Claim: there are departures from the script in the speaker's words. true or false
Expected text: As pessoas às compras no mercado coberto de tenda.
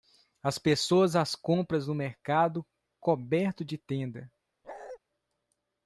false